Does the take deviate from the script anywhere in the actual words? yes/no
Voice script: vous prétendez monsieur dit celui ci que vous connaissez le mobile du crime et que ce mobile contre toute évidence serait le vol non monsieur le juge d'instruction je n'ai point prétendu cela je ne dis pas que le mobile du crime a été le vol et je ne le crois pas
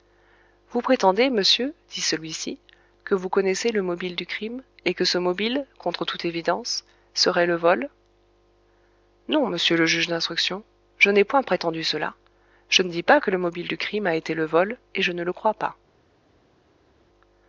no